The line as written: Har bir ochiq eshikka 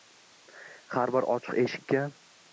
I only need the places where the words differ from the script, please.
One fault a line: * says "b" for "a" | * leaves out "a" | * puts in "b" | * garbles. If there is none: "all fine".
all fine